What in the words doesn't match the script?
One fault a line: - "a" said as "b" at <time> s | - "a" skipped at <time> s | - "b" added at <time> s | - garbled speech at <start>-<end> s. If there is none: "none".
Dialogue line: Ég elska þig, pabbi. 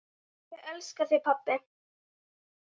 none